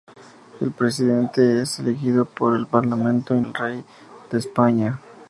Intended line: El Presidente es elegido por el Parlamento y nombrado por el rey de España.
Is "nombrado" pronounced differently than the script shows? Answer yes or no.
yes